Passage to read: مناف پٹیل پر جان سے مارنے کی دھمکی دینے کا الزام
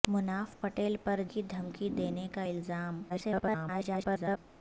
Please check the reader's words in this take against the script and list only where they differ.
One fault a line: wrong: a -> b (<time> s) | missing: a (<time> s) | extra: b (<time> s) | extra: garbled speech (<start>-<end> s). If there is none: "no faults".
missing: جان سے مارنے (1.2 s)
extra: garbled speech (3.1-4.4 s)